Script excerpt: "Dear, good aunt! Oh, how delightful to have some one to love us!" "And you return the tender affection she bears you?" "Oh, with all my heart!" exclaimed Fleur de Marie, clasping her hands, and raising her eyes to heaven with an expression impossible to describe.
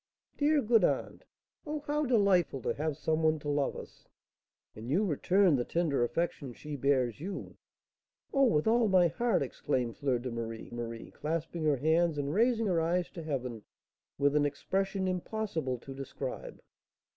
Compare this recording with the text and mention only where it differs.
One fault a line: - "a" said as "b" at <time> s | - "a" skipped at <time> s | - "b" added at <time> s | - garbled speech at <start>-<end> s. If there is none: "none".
- "Marie" added at 10.7 s